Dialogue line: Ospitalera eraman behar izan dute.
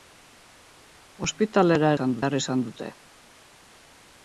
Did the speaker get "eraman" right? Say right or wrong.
wrong